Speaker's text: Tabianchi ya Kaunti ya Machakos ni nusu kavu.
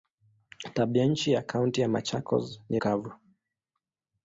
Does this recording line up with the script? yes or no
no